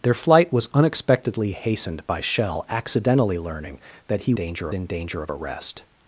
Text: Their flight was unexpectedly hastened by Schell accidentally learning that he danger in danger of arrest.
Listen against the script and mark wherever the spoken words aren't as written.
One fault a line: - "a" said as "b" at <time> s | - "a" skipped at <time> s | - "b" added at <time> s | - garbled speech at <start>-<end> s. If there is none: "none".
none